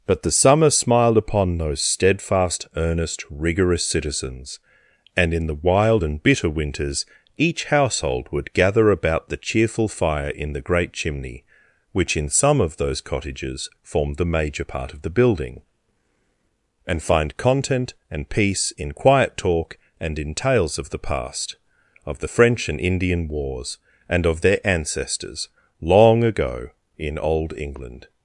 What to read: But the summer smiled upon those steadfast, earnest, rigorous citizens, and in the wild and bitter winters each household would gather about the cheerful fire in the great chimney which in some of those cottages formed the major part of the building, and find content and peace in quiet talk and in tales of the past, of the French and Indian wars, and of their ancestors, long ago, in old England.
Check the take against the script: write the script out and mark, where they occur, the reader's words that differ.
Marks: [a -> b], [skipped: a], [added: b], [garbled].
But the summer smiled upon those steadfast, earnest, rigorous citizens, and in the wild and bitter winters each household would gather about the cheerful fire in the great chimney which in some of those cottages formed the major part of the building, and find content and peace in quiet talk and in tales of the past, of the French and Indian wars, and of their ancestors, long ago, in old England.